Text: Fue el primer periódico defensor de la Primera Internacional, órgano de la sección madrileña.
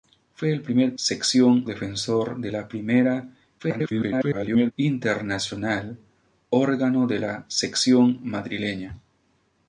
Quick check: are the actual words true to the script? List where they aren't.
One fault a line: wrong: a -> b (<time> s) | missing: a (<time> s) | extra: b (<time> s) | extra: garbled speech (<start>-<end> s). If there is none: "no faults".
wrong: periódico -> sección (1.0 s)
extra: garbled speech (3.6-4.7 s)